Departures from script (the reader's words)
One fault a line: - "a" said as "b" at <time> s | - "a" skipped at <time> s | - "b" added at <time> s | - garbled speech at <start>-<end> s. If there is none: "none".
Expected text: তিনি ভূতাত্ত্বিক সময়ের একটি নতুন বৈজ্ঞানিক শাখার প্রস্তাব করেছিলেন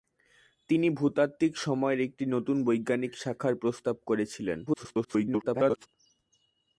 - garbled speech at 4.7-5.9 s